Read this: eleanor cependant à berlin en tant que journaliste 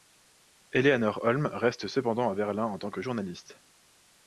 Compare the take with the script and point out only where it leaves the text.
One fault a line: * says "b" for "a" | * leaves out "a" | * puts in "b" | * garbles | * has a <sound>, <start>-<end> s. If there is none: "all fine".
* puts in "holm reste"